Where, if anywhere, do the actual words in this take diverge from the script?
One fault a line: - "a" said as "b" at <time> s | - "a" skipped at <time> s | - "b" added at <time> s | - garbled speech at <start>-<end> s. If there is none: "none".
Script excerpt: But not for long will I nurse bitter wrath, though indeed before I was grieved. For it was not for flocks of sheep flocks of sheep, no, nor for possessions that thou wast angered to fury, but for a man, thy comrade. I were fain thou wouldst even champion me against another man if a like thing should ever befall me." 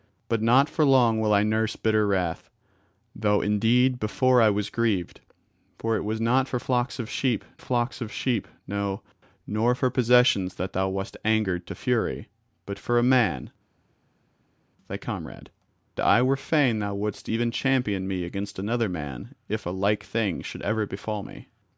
none